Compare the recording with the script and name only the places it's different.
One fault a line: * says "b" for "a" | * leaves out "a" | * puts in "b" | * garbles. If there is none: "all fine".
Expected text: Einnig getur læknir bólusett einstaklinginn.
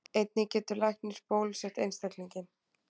all fine